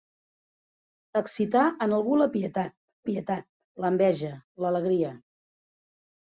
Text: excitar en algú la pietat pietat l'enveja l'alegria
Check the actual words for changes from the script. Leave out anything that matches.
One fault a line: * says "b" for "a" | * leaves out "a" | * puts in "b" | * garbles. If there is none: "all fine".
all fine